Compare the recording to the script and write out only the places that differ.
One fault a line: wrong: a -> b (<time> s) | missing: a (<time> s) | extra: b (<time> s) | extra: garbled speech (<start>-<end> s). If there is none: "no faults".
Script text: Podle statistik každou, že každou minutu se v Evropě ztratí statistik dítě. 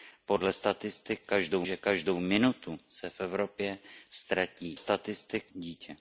no faults